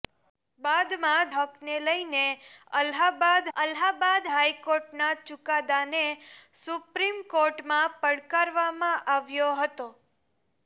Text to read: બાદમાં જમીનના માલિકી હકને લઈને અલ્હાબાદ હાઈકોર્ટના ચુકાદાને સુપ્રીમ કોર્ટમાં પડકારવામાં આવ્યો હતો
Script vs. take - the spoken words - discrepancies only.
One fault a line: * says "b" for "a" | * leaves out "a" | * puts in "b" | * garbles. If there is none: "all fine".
* leaves out "જમીનના માલિકી"
* puts in "અલ્હાબાદ"